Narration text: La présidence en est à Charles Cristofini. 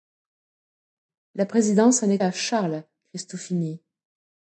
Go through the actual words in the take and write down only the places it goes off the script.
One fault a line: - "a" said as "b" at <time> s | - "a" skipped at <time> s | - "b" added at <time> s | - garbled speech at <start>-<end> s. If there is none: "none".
none